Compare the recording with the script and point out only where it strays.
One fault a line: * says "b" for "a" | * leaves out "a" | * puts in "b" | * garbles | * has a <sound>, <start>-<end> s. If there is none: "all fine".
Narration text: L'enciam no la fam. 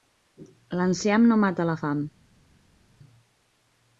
* puts in "mata"